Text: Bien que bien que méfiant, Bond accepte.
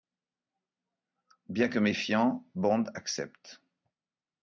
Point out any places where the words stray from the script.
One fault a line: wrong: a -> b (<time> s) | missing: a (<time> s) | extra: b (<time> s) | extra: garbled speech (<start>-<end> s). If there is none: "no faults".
missing: bien que (1.8 s)